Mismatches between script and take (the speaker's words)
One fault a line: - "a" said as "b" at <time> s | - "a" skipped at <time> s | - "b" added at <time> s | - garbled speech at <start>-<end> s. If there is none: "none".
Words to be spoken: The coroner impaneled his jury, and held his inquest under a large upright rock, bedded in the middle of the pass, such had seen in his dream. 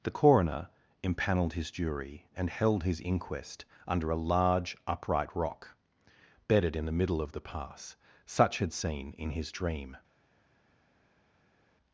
none